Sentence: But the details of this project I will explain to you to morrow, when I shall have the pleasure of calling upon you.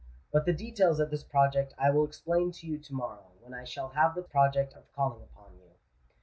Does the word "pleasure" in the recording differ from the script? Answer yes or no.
yes